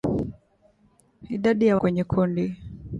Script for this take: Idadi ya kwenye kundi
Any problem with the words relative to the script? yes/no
no